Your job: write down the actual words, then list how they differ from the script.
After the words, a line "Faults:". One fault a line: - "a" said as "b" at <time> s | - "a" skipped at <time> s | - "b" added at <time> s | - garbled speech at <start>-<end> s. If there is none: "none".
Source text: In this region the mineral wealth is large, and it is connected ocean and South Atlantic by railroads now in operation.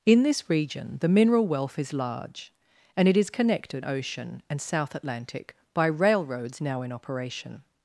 In this region the mineral wealth is large, and it is connected ocean and South Atlantic by railroads now in operation.
Faults:
none